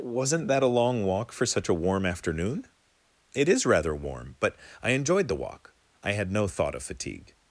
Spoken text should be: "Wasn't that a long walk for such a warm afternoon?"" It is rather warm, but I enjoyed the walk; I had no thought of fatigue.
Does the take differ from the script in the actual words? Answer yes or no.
no